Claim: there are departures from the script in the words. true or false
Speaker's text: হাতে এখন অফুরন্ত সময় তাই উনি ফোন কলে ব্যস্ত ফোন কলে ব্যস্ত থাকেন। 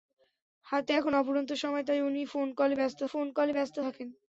false